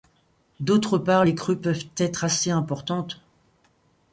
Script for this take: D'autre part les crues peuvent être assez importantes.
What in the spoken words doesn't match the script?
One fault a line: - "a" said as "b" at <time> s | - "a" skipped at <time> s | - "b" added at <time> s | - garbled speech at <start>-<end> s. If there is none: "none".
none